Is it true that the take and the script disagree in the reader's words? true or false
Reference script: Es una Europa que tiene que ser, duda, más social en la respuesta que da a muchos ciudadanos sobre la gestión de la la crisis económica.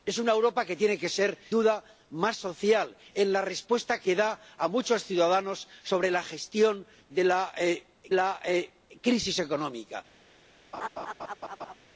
false